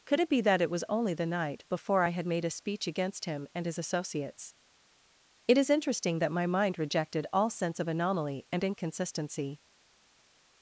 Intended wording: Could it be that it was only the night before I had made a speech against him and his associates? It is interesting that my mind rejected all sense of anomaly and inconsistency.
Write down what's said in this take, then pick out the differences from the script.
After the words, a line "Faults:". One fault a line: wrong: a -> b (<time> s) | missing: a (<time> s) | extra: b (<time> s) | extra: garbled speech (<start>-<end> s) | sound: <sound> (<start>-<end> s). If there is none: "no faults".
Could it be that it was only the night before I had made a speech against him and his associates? It is interesting that my mind rejected all sense of anomaly and inconsistency.
Faults:
no faults